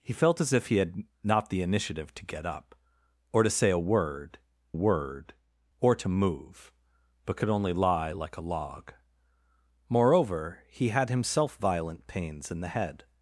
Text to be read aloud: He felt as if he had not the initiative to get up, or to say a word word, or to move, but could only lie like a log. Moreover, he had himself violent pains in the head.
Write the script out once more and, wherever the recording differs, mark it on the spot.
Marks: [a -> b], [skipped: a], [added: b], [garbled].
He felt as if he had not the initiative to get up, or to say a word word, or to move, but could only lie like a log. Moreover, he had himself violent pains in the head.